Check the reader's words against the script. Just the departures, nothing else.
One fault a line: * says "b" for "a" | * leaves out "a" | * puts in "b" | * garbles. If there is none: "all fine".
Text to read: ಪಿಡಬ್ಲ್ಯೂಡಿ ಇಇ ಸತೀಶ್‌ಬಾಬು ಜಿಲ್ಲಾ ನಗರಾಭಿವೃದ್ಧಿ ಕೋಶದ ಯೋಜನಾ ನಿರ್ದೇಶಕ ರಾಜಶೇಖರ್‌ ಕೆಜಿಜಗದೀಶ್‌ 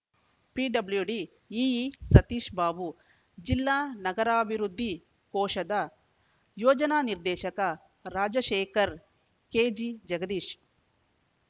all fine